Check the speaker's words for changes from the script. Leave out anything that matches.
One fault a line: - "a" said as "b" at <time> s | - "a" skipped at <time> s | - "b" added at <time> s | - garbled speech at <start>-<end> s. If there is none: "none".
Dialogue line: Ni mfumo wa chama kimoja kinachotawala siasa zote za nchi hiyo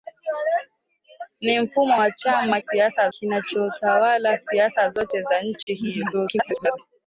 - "kimoja" said as "siasa" at 2.6 s
- garbled speech at 6.1-6.8 s